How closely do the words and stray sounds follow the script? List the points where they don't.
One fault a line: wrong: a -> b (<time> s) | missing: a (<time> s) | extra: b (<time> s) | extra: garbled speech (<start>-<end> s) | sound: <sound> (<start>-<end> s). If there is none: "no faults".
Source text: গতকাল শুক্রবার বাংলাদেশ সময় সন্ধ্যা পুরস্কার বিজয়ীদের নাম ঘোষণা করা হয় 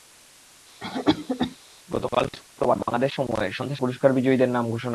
sound: cough (0.8-1.6 s)